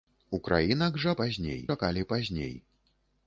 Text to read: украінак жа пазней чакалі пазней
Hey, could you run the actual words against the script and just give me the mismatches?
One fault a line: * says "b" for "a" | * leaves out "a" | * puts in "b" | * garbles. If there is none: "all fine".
all fine